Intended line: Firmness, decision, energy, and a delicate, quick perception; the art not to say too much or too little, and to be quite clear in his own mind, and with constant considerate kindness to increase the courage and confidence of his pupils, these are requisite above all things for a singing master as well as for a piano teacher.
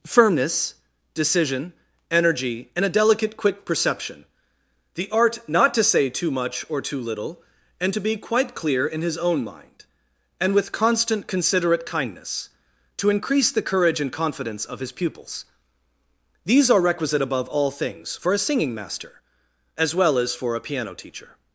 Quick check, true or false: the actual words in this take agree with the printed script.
true